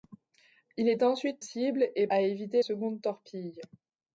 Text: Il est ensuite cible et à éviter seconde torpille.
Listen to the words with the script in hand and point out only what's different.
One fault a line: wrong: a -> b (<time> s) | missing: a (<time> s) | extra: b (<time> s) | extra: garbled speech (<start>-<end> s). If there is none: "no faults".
no faults